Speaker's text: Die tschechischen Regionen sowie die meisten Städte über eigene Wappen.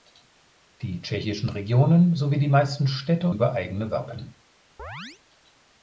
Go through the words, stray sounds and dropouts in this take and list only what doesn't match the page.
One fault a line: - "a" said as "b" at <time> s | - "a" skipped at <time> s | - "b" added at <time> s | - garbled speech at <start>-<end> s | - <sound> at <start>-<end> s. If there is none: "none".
- chirp at 4.8-5.2 s